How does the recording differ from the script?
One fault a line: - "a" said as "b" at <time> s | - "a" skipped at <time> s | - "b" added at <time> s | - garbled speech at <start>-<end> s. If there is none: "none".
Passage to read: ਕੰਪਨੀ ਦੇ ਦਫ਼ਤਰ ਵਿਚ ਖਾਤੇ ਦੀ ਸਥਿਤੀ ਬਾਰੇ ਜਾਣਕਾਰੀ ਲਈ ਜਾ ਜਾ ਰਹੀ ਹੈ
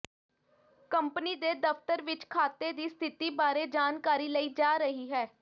- "ਜਾ" skipped at 4.8 s